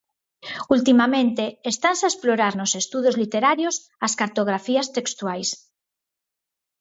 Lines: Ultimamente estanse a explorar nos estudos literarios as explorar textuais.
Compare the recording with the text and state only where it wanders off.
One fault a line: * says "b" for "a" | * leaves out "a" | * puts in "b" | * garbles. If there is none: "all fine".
* says "cartografías" for "explorar"